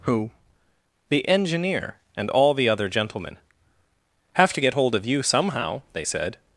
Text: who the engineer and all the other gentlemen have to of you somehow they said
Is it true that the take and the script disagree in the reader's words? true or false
true